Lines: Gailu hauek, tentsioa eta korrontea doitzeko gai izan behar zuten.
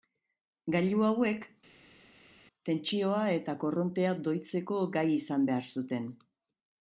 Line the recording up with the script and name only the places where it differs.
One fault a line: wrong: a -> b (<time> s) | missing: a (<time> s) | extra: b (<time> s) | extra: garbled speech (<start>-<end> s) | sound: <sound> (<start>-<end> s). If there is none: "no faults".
no faults